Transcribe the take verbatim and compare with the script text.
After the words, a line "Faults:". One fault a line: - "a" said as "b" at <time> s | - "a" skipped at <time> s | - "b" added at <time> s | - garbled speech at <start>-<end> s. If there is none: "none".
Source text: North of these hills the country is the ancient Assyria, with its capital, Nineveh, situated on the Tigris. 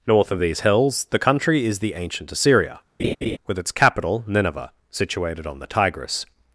North of these hills the country is the ancient Assyria, with its capital, Nineveh, situated on the Tigris.
Faults:
none